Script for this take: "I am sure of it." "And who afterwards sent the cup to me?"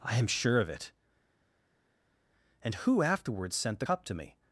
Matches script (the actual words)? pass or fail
pass